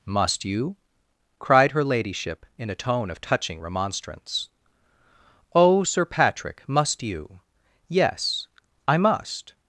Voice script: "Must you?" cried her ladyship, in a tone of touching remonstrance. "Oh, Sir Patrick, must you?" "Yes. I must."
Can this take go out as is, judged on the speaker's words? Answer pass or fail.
pass